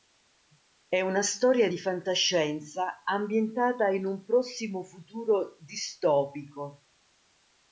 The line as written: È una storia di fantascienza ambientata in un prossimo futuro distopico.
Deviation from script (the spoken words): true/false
false